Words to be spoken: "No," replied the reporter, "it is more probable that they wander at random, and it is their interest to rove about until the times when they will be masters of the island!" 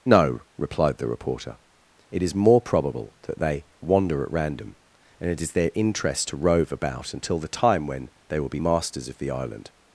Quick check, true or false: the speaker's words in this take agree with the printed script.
false